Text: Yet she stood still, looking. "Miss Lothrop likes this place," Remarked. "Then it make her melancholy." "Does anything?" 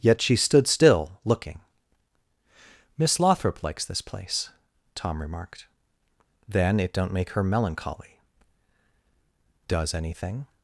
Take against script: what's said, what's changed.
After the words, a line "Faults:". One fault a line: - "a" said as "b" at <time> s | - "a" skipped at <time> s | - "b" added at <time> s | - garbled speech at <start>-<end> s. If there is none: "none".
Yet she stood still, looking. "Miss Lothrop likes this place," Tom remarked. "Then it don't make her melancholy." "Does anything?"
Faults:
- "Tom" added at 5.0 s
- "don't" added at 6.9 s